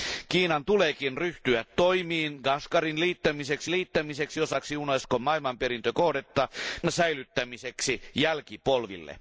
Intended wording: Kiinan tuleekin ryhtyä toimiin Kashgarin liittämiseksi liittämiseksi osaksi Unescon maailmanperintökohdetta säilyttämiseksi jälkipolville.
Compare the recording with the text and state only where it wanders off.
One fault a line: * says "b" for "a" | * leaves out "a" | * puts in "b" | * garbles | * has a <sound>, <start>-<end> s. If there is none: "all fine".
all fine